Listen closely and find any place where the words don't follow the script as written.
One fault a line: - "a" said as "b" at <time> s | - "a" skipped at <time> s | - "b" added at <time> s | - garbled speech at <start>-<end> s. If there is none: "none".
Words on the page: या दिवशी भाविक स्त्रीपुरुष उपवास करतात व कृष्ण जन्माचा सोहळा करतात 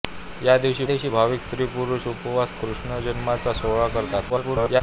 - "दिवशी" added at 0.8 s
- "करतात व" skipped at 2.5 s
- garbled speech at 4.3-4.8 s